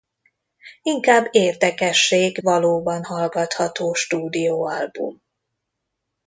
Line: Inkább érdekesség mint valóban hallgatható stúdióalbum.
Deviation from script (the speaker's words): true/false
true